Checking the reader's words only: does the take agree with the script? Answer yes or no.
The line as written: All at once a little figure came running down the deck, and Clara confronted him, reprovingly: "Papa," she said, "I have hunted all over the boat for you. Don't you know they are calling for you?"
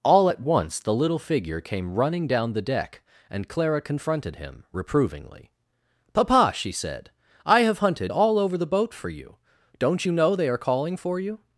no